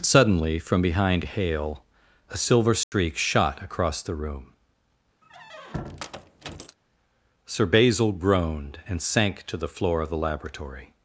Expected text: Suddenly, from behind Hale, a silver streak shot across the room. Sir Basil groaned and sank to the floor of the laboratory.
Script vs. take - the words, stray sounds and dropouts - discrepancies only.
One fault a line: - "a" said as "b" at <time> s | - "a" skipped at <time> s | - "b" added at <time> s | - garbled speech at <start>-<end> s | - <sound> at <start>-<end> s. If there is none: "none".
- dropout at 2.8-2.9 s
- squeak at 5.2-6.8 s